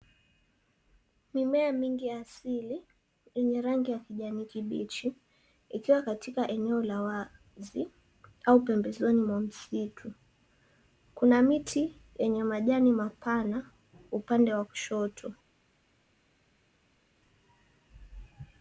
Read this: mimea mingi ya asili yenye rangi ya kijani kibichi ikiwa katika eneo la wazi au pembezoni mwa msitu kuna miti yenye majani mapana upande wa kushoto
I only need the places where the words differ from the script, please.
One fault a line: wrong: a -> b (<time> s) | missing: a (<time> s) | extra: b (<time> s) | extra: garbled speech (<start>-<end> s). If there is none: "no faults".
no faults